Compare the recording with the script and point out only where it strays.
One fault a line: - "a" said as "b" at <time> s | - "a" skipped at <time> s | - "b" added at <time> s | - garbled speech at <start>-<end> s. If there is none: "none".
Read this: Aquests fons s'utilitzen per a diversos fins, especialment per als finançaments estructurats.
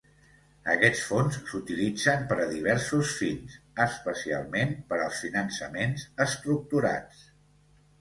none